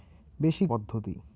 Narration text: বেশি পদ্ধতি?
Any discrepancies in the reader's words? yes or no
no